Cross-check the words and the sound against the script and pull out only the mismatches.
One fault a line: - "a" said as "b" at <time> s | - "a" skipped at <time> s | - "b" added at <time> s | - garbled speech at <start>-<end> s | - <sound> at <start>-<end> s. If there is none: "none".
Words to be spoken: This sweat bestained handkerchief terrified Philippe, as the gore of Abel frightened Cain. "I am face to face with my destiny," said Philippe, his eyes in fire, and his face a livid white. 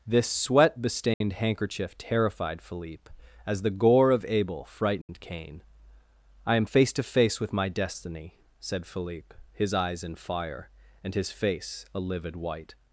- dropout at 1.1-1.2 s
- dropout at 5.0-5.1 s